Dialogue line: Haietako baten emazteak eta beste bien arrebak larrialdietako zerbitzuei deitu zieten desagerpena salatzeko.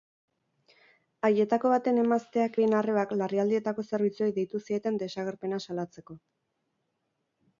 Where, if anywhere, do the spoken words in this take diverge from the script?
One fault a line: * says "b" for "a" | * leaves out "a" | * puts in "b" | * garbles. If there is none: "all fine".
* leaves out "eta beste"